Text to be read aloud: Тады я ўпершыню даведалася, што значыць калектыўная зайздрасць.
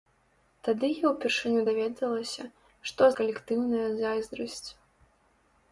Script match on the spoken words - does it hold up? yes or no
no